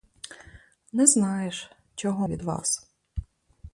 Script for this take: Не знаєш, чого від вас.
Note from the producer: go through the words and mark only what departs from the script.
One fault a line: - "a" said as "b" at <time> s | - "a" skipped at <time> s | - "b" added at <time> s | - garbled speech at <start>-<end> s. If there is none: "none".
none